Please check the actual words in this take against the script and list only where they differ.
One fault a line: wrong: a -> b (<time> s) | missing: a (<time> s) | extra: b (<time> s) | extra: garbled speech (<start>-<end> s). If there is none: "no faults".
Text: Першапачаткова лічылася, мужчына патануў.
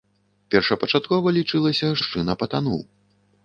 no faults